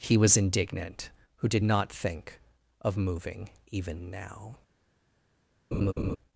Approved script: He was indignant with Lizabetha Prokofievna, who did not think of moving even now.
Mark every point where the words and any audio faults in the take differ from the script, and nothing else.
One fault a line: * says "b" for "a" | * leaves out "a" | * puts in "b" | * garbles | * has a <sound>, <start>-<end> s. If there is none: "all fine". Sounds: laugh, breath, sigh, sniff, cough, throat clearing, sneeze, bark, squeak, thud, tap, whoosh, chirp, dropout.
* leaves out "with Lizabetha Prokofievna"
* has a laugh, 5.7-6.2 s